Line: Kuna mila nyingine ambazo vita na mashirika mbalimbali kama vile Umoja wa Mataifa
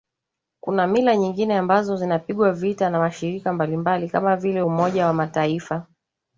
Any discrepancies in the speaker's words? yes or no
yes